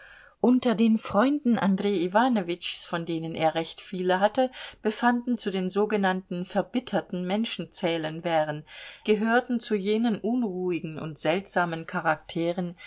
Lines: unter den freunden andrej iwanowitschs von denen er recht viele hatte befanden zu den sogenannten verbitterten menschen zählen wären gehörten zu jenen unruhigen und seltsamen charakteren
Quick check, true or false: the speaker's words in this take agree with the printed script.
true